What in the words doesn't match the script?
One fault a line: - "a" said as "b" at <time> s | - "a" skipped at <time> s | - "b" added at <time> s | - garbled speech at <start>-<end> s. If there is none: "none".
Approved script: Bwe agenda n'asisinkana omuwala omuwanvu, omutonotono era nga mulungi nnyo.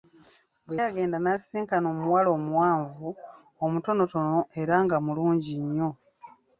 none